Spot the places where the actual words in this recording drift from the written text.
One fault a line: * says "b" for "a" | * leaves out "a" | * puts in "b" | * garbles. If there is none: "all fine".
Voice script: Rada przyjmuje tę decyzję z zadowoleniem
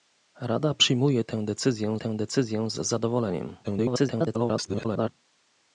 * puts in "tę decyzję"
* garbles